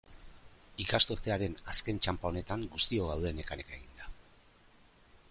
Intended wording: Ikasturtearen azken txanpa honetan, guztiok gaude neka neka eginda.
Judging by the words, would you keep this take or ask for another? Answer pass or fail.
pass